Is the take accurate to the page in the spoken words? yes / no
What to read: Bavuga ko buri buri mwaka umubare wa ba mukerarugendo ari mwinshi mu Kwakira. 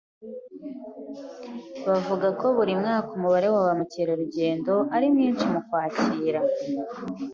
no